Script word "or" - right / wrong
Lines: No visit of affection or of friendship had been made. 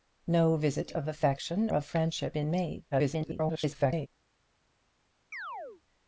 wrong